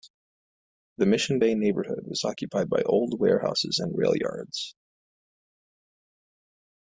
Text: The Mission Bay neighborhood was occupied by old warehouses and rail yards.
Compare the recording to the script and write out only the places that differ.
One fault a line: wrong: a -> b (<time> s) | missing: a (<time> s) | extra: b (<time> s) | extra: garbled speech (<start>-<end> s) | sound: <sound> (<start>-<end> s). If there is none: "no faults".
no faults